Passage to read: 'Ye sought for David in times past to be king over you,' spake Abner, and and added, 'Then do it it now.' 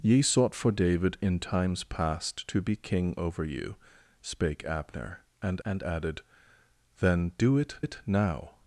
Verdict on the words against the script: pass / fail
pass